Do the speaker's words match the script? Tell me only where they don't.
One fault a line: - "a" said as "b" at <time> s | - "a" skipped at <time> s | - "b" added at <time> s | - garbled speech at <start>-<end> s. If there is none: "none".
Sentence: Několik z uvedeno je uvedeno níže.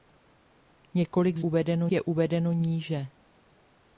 none